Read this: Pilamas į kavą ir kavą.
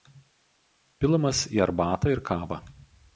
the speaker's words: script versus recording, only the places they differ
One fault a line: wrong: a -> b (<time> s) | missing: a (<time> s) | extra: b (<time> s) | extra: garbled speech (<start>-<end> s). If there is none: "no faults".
wrong: kavą -> arbatą (1.6 s)